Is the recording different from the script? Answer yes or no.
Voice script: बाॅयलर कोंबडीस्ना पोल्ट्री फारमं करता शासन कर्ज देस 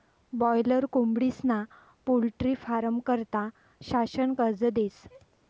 no